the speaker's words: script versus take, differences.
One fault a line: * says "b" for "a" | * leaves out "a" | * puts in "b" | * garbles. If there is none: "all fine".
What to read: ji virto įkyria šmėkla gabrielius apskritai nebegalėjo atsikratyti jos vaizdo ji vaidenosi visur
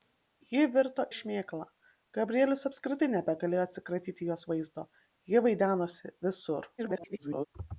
* leaves out "įkyria"
* garbles